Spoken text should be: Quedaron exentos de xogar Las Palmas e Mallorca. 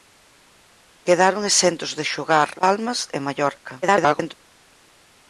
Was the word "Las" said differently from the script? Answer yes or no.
yes